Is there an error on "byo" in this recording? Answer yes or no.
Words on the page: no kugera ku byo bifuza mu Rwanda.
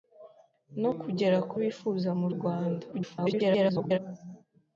yes